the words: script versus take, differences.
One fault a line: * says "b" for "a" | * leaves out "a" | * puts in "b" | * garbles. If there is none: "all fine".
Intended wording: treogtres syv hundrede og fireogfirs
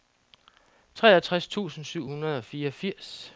* puts in "tusind"